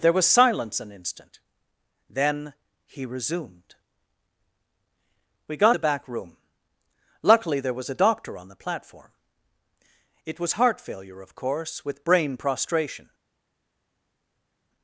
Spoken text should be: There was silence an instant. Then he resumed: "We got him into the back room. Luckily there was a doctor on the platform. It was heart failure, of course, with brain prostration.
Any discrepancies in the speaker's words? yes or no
yes